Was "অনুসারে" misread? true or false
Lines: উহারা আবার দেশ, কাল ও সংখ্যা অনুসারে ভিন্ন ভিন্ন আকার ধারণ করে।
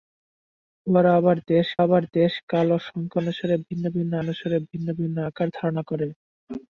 false